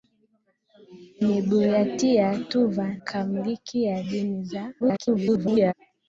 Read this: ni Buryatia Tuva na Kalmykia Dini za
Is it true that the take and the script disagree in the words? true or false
true